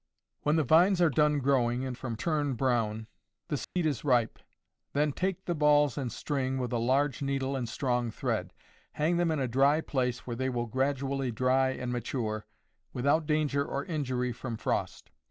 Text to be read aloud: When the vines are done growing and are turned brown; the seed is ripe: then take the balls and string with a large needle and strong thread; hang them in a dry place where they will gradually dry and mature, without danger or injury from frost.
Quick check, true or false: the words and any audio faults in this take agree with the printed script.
false